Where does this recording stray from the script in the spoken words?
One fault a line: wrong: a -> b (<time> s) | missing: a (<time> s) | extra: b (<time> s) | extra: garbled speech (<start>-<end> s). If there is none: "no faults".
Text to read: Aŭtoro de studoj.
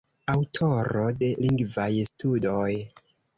extra: lingvaj (1.5 s)